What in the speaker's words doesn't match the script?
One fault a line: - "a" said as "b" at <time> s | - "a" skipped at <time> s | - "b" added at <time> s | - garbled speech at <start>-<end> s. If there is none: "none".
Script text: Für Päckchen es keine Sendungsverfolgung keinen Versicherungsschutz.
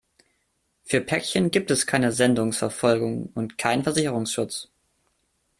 - "gibt" added at 1.5 s
- "und" added at 3.3 s